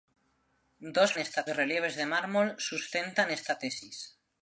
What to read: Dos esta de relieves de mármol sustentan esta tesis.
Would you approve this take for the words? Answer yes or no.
yes